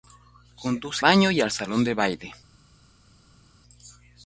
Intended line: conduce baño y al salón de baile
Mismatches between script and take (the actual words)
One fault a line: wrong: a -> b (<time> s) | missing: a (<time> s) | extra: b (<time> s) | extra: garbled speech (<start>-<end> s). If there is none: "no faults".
no faults